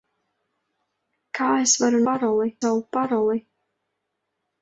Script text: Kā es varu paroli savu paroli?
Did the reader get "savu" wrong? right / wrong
right